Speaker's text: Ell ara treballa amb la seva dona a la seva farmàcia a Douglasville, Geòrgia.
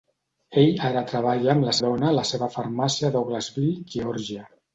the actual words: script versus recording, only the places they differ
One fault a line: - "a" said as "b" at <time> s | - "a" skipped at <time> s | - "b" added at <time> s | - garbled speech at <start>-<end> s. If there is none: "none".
- "seva" skipped at 1.8 s